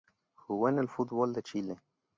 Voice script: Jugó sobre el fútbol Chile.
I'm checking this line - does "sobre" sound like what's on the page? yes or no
no